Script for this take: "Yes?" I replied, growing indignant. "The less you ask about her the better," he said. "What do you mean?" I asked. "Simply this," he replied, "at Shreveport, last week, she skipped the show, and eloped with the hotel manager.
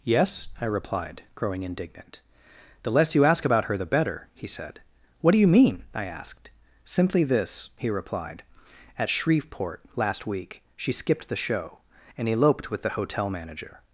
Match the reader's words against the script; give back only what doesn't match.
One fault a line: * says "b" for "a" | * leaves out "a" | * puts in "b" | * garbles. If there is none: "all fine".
all fine